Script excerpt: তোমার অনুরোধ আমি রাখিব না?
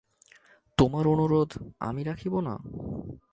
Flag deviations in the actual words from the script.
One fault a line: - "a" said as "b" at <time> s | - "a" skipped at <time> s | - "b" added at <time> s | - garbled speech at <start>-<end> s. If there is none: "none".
none